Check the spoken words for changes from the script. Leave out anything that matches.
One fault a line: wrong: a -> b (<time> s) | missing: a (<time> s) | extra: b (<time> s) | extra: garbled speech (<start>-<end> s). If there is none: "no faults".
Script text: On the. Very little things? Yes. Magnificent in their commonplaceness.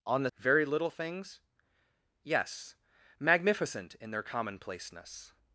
no faults